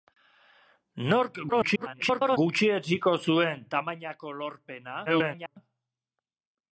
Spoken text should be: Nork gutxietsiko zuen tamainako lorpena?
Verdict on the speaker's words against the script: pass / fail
fail